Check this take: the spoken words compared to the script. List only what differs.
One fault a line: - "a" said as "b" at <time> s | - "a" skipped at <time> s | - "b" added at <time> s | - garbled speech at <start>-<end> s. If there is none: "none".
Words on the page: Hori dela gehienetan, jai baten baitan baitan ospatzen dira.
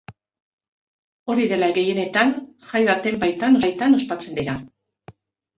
none